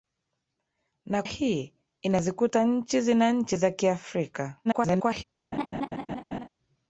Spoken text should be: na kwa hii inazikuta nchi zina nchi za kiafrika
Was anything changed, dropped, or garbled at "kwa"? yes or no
yes